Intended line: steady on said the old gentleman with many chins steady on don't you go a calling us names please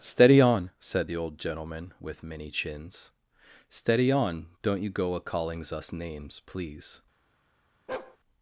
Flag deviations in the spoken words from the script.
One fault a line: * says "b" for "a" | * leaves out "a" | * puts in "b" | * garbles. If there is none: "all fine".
* says "callings" for "calling"